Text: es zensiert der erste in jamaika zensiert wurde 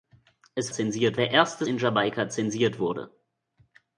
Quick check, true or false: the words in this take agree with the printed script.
true